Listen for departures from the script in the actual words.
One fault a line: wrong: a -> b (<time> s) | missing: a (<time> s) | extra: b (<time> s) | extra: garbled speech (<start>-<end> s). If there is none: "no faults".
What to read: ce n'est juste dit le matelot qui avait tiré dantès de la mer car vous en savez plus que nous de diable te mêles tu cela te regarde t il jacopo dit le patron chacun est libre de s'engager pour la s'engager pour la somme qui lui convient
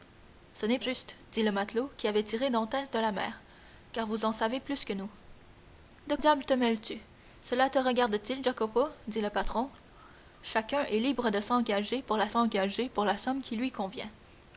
no faults